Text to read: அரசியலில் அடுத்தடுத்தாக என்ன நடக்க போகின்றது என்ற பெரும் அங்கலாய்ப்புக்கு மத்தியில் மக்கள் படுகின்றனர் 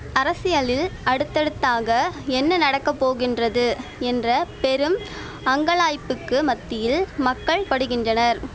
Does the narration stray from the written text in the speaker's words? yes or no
no